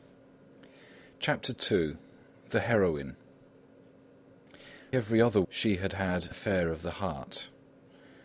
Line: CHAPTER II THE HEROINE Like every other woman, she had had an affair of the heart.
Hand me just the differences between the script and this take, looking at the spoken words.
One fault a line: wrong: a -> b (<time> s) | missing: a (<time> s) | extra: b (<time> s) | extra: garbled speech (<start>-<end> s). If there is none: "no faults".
missing: Like (3.2 s)
missing: woman (5.4 s)
missing: an (6.3 s)